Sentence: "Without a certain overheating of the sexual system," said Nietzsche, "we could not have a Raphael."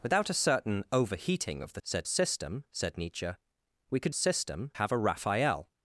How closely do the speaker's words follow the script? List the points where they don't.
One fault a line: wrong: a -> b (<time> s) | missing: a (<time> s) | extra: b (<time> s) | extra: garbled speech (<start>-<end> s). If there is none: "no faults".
wrong: sexual -> said (1.8 s)
wrong: not -> system (4.1 s)